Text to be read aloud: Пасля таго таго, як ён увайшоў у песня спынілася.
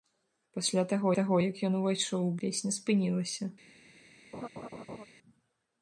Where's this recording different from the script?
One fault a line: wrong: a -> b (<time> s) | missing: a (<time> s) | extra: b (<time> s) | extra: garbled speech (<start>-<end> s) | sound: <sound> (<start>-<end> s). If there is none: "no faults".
sound: laugh (4.3-5.1 s)